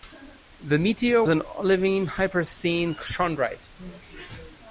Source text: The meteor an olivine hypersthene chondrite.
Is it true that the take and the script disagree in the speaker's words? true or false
false